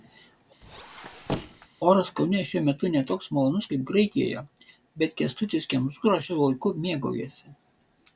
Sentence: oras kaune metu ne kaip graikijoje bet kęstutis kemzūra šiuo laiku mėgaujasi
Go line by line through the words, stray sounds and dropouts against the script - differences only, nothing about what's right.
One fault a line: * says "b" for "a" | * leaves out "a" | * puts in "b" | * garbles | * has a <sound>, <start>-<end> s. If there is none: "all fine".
* has a squeak, 0.6-1.7 s
* puts in "šiuo"
* puts in "toks malonus"